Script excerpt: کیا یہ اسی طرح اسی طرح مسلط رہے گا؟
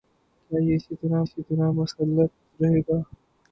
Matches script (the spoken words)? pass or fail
pass